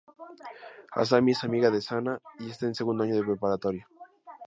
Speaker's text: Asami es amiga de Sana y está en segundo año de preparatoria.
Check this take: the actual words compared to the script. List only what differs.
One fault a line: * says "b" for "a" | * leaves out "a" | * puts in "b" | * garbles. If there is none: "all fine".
all fine